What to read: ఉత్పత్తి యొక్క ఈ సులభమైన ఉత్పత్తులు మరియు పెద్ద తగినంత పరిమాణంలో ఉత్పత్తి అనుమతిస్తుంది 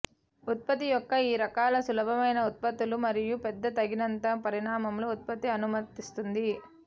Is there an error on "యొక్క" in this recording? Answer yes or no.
no